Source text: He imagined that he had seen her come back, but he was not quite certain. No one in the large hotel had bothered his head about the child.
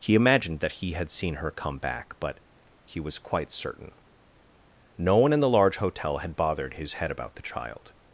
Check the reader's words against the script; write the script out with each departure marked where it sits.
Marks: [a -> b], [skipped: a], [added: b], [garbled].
He imagined that he had seen her come back, but he was [skipped: not] quite certain. No one in the large hotel had bothered his head about the child.